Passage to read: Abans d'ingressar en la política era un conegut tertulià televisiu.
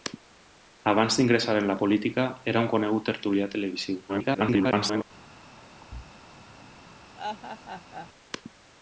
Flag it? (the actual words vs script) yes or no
yes